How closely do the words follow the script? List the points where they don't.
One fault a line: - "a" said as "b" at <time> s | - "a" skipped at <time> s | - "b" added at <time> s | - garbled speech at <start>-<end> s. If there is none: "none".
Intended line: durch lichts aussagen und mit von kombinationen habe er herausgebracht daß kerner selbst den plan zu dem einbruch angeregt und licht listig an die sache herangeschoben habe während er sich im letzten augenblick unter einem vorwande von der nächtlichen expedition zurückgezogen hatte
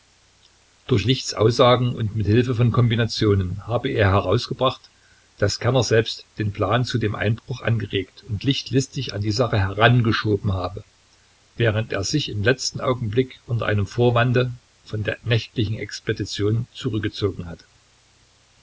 - "hilfe" added at 2.2 s